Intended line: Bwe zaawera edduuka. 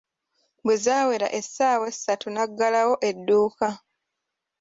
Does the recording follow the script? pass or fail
fail